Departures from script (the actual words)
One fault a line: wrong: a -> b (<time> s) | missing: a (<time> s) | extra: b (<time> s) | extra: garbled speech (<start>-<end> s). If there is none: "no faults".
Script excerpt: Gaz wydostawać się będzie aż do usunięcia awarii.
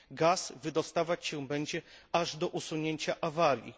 no faults